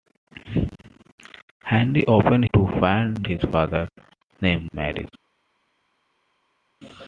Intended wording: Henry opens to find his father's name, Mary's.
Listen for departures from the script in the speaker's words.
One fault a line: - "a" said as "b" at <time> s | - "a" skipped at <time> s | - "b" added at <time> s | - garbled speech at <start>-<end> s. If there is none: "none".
none